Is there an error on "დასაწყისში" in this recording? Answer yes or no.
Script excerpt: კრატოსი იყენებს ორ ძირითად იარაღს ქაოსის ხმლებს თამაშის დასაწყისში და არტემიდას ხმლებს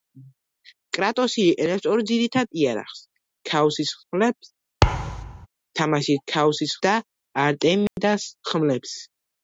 yes